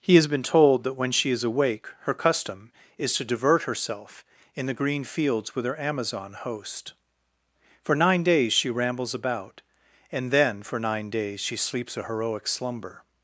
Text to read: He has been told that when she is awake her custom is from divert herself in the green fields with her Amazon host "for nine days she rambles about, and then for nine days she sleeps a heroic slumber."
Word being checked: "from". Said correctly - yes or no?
no